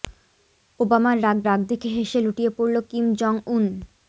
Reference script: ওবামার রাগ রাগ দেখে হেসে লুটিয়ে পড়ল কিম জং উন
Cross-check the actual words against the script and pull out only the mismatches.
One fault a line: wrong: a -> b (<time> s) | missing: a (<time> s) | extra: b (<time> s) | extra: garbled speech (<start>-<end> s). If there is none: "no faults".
no faults